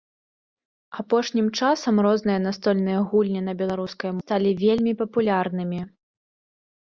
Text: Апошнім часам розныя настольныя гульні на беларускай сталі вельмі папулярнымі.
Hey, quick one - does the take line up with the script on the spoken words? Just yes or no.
yes